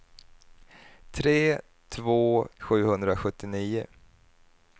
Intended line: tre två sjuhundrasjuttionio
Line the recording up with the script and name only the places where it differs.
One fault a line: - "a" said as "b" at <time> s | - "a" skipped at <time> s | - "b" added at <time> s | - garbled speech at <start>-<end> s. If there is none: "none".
none